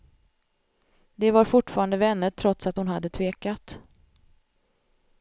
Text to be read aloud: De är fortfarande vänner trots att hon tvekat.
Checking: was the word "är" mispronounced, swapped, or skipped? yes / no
yes